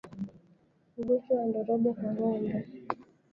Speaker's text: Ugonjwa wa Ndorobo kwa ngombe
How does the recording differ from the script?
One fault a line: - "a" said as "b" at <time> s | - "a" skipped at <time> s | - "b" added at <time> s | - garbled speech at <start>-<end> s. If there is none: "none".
none